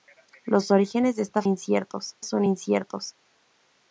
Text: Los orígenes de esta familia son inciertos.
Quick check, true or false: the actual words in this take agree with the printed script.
false